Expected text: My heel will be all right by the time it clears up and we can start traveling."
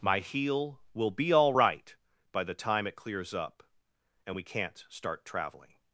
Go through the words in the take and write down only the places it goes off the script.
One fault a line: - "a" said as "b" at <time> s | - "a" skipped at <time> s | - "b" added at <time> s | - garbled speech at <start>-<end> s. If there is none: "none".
- "can" said as "can't" at 4.4 s